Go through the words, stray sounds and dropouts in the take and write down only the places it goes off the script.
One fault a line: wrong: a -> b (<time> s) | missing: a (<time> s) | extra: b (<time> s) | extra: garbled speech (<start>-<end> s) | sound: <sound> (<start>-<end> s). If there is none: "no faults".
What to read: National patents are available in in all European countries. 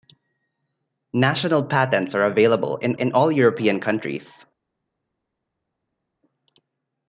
no faults